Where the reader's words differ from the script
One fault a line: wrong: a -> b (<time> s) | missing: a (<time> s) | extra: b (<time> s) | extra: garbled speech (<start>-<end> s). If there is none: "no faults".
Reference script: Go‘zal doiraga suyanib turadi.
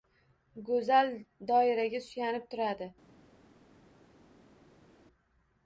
no faults